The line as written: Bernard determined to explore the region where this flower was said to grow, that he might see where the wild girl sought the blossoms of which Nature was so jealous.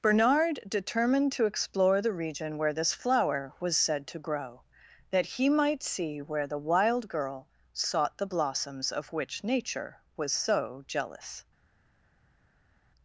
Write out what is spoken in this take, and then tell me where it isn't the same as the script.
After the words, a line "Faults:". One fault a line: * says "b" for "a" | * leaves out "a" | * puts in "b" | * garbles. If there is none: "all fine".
Bernard determined to explore the region where this flower was said to grow, that he might see where the wild girl sought the blossoms of which Nature was so jealous.
Faults:
all fine